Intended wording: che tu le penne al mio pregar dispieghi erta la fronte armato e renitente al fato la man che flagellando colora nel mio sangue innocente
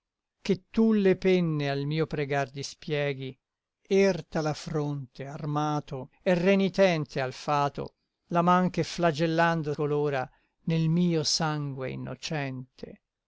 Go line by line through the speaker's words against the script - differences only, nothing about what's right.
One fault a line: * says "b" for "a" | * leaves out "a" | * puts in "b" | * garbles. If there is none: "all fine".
all fine